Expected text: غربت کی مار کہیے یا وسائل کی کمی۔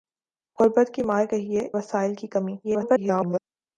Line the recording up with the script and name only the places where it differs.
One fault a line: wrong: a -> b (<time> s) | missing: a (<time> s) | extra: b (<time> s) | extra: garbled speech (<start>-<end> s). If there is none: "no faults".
missing: یا (1.7 s)
extra: garbled speech (2.6-3.4 s)